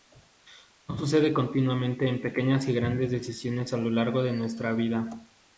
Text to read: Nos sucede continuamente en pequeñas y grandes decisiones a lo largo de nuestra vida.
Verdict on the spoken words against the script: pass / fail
pass